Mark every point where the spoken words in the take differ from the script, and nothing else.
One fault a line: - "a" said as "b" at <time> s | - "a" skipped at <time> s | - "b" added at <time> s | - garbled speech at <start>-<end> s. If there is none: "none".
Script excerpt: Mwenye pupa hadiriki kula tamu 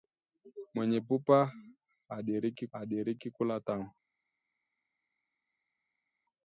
- "hadiriki" added at 2.7 s